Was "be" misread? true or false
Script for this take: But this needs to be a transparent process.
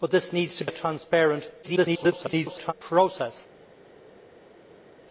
true